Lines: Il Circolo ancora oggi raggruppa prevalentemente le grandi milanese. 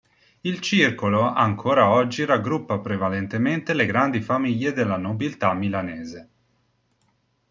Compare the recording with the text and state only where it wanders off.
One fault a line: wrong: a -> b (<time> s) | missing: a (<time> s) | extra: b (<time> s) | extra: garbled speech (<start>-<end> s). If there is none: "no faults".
extra: famiglie della nobiltà (4.2 s)